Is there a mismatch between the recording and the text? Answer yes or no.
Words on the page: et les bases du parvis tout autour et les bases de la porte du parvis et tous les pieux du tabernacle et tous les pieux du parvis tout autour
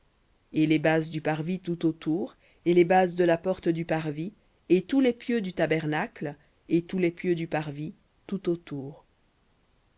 no